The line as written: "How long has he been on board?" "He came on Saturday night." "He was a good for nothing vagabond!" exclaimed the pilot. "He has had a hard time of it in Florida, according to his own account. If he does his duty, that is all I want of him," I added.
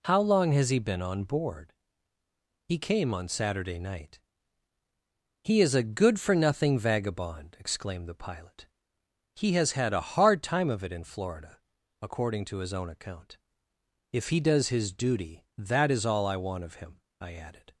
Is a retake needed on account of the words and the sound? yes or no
yes